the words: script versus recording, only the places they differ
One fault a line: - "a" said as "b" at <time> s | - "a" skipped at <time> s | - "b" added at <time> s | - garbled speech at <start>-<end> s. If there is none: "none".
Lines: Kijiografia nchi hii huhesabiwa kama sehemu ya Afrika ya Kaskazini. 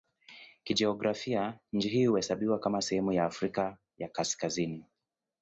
none